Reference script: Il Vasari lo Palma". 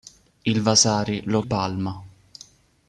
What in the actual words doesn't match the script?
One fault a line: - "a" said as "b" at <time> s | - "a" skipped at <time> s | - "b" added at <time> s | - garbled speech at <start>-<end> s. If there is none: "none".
none